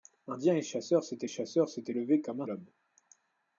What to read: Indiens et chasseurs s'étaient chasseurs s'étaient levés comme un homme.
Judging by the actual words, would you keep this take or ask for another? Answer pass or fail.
pass